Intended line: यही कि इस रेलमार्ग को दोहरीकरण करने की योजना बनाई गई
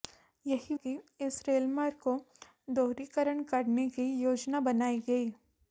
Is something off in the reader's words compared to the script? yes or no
no